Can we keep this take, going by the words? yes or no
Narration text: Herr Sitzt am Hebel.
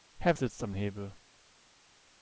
yes